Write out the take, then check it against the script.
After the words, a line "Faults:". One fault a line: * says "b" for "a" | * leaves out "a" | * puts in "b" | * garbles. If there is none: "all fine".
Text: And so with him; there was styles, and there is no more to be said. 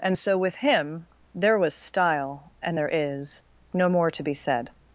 And so with him; there was style, and there is no more to be said.
Faults:
* says "style" for "styles"